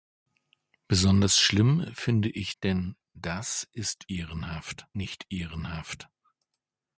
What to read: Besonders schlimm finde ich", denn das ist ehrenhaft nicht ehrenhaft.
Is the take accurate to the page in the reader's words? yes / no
yes